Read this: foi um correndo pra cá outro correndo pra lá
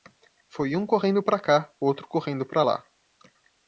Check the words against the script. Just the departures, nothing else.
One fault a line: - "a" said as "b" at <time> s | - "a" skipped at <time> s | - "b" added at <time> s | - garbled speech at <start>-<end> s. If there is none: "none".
none